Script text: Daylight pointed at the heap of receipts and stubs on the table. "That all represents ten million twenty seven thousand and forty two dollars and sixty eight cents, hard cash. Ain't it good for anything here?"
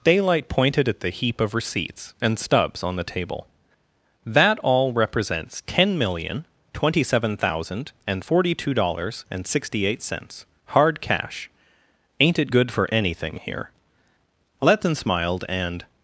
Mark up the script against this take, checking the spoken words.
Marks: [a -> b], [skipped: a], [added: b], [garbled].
Daylight pointed at the heap of receipts and stubs on the table. "That all represents ten million twenty seven thousand and forty two dollars and sixty eight cents, hard cash. Ain't it good for anything here?" [added: Letton smiled and]